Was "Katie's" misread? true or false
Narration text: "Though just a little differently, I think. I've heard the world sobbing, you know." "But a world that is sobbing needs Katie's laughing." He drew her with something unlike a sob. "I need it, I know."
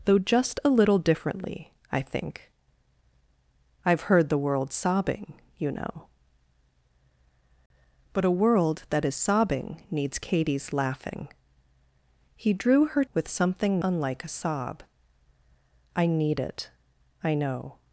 false